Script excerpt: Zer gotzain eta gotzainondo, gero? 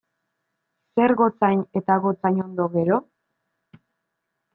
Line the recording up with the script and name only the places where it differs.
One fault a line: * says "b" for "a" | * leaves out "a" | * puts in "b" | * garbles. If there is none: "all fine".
all fine